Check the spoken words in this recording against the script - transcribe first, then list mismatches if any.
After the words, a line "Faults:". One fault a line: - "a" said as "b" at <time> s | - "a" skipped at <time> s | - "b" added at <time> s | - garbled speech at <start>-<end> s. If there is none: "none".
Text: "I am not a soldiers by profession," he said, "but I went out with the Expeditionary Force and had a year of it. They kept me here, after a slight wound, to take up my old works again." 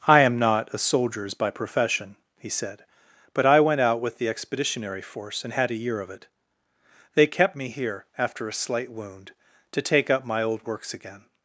"I am not a soldiers by profession," he said, "but I went out with the Expeditionary Force and had a year of it. They kept me here, after a slight wound, to take up my old works again."
Faults:
none